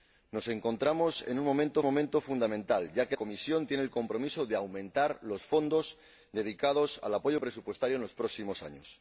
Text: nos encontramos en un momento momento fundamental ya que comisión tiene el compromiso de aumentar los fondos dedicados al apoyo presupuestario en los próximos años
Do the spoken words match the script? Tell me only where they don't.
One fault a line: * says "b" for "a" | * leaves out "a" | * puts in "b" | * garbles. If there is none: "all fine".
all fine